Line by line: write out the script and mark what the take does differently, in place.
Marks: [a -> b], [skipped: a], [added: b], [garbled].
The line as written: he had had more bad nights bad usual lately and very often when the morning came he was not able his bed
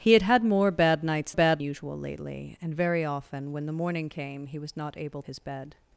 he had had more bad nights bad usual lately and very often when the morning came he was not able his bed